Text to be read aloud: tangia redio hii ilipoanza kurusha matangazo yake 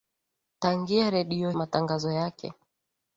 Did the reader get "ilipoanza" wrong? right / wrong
wrong